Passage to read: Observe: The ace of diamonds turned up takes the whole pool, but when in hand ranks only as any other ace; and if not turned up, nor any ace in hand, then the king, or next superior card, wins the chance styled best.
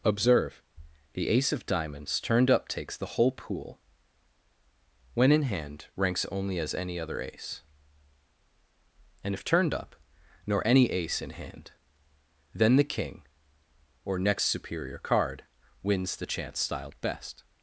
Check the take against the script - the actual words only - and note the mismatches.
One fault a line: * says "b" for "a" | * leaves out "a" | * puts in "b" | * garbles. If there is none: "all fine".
* leaves out "but"
* leaves out "not"